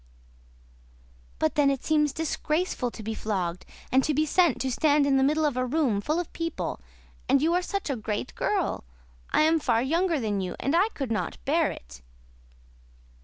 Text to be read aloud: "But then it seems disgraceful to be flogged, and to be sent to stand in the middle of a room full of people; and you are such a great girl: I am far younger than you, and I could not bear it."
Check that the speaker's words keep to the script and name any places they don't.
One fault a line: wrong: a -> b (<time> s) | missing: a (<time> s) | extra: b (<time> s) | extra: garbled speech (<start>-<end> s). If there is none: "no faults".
no faults